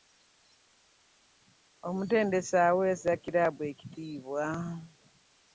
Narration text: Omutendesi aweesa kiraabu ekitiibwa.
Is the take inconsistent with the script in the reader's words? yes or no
no